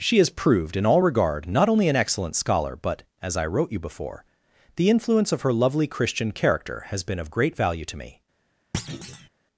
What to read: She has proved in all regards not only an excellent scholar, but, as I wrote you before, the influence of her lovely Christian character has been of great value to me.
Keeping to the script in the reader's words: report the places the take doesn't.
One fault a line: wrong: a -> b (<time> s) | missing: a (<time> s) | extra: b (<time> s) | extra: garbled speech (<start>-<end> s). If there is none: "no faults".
wrong: regards -> regard (1.0 s)